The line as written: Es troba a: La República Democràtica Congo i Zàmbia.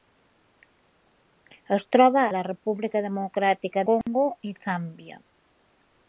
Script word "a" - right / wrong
right